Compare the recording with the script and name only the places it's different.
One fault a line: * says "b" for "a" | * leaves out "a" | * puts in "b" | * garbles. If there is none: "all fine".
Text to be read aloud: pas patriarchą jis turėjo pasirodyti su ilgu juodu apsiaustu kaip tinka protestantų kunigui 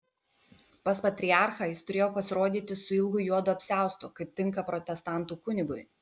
all fine